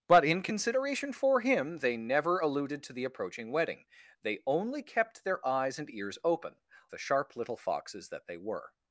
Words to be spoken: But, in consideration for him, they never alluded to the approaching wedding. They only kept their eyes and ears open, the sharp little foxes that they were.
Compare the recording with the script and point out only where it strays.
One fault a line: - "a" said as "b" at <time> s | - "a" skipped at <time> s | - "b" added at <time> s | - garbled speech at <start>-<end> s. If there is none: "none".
none